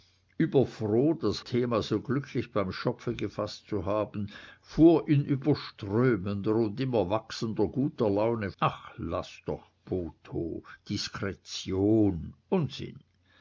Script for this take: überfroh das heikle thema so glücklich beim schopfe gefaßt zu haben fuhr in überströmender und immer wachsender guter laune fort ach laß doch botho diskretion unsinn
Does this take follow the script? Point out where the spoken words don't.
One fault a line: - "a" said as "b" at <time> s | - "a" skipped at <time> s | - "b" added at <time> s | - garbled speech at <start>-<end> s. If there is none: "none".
- "heikle" skipped at 1.4 s
- "fort" skipped at 8.5 s